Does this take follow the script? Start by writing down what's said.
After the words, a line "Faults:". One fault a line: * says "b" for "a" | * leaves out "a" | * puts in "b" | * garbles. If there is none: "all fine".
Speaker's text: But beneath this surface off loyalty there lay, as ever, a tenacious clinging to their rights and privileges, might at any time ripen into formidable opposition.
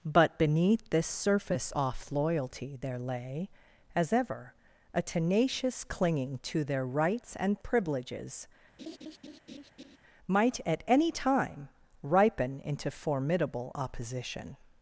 But beneath this surface off loyalty there lay, as ever, a tenacious clinging to their rights and privileges, might at any time ripen into formidable opposition.
Faults:
all fine